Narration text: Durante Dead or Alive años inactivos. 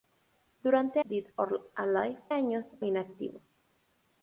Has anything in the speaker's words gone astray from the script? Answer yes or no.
no